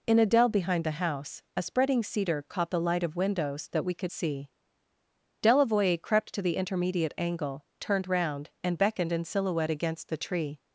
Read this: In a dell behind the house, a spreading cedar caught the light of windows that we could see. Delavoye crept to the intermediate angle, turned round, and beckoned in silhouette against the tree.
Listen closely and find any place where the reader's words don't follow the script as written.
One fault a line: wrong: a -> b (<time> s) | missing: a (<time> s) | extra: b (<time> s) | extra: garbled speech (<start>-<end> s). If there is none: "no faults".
no faults